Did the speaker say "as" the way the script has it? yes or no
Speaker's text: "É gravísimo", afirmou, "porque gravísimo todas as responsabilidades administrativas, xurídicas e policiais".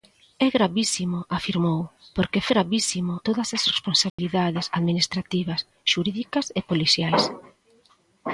yes